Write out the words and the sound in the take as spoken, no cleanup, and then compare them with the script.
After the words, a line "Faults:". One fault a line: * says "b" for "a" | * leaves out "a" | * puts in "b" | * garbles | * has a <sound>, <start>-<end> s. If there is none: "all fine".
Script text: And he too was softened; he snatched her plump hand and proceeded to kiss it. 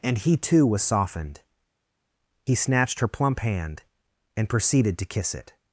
And he too was softened; he snatched her plump hand and proceeded to kiss it.
Faults:
all fine